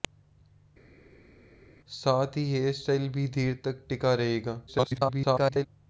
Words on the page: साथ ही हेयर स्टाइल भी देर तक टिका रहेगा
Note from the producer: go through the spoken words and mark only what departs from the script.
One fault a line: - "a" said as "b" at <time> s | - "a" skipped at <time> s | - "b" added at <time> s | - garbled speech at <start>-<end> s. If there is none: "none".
- garbled speech at 4.7-5.7 s